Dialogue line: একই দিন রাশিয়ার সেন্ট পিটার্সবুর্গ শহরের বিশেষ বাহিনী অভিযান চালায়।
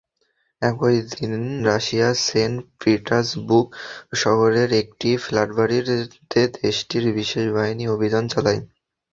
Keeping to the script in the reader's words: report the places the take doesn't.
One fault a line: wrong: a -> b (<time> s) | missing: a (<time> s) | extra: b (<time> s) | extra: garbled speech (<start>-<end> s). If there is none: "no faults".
extra: একটি ফ্ল্যাটবাড়িতে দেশটির (4.8 s)